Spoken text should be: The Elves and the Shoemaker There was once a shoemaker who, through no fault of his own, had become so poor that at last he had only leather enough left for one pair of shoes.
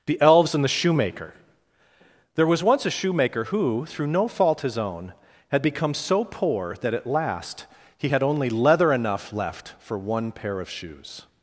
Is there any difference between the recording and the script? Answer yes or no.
yes